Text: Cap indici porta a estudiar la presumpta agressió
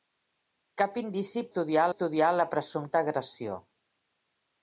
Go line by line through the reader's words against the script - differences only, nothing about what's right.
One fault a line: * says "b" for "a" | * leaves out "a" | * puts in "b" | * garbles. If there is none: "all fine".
* says "estudiar" for "porta"